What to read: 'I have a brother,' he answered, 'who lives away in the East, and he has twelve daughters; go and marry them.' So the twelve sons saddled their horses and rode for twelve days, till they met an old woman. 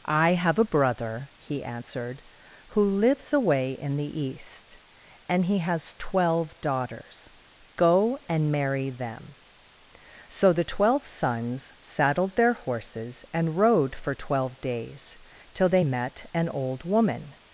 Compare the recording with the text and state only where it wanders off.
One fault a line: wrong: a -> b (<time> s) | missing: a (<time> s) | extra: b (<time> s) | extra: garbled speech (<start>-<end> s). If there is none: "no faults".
no faults